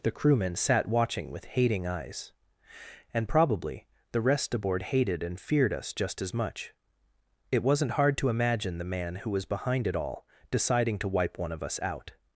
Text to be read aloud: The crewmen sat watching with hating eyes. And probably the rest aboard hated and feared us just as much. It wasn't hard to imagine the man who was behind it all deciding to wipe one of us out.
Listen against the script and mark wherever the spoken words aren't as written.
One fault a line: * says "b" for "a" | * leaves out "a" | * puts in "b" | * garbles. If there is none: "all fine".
all fine